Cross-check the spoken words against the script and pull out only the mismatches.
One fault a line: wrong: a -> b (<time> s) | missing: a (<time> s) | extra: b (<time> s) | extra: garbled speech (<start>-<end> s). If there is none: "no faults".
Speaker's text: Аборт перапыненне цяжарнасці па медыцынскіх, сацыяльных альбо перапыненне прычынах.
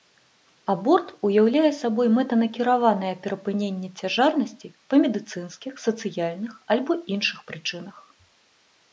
extra: уяўляе сабой мэтанакіраванае (1.3 s)
wrong: перапыненне -> іншых (7.2 s)